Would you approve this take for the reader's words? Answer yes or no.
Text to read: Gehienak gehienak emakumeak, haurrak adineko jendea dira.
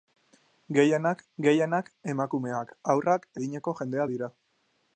yes